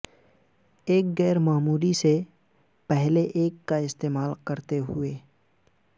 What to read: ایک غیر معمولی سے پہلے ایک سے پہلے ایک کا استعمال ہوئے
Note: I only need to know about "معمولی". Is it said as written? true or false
true